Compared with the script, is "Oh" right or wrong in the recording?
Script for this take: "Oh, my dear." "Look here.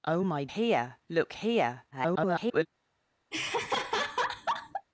right